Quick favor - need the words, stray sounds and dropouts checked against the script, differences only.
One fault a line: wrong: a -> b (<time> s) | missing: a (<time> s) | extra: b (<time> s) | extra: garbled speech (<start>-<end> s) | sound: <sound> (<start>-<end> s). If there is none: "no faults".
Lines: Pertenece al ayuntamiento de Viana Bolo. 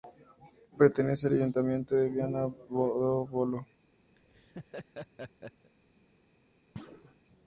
extra: do (2.4 s)
sound: laugh (4.2-5.7 s)
sound: thud (6.8-7.2 s)